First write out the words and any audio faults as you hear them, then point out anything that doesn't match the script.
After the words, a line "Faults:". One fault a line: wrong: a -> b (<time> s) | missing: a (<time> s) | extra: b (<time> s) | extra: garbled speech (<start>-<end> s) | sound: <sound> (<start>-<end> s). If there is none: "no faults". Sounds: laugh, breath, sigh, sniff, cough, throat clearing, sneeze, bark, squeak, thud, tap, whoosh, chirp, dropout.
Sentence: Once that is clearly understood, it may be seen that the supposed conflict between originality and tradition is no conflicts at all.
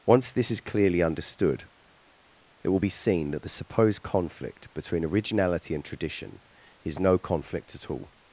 Once this is clearly understood, it will be seen that the supposed conflict between originality and tradition is no conflict at all.
Faults:
wrong: that -> this (0.3 s)
wrong: may -> will (2.7 s)
wrong: conflicts -> conflict (7.2 s)